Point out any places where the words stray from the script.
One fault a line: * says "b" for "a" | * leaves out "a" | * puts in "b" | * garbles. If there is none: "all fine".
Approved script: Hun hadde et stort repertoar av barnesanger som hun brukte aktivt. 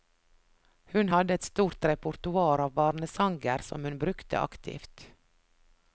all fine